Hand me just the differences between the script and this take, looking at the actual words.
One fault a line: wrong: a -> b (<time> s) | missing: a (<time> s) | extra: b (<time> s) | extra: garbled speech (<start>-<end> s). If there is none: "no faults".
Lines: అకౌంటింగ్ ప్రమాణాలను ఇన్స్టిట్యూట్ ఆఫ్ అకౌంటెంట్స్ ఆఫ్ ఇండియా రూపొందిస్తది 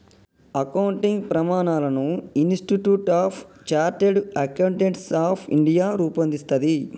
extra: చార్టర్డ్ (3.7 s)